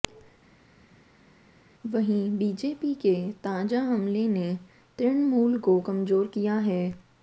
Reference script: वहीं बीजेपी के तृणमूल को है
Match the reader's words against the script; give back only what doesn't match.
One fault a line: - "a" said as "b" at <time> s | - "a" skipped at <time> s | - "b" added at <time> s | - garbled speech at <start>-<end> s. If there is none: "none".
- "ताजा हमले ने" added at 3.4 s
- "कमजोर किया" added at 5.9 s